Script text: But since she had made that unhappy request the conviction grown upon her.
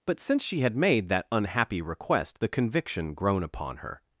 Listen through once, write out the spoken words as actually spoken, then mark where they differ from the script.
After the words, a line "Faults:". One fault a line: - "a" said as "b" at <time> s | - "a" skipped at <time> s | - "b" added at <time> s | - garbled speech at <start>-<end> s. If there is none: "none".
But since she had made that unhappy request the conviction grown upon her.
Faults:
none